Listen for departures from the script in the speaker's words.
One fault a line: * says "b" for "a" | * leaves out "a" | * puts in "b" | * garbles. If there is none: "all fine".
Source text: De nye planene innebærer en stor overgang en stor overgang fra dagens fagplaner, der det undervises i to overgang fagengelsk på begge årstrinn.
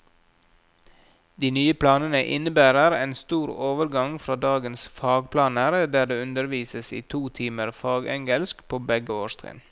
* leaves out "en stor overgang"
* says "timer" for "overgang"